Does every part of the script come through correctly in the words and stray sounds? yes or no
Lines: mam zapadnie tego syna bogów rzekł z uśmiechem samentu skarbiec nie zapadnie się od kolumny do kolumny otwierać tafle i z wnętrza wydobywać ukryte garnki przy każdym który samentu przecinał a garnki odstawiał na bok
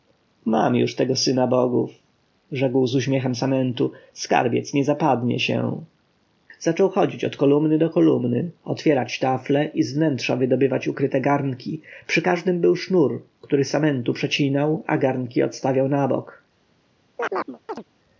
no